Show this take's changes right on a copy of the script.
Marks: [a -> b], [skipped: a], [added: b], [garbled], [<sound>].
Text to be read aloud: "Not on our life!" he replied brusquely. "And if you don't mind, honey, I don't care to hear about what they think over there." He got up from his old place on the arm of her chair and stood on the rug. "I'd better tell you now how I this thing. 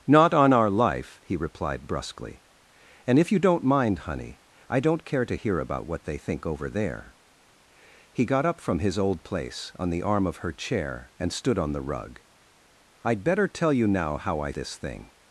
"Not on our life!" he replied brusquely. "And if you don't mind, honey, I don't care to hear about what they think over there." He got up from his old place on the arm of her chair and stood on the rug. "I'd better tell you now how I this thing.